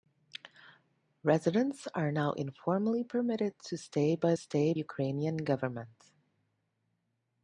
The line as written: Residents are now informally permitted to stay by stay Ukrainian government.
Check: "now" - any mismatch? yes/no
no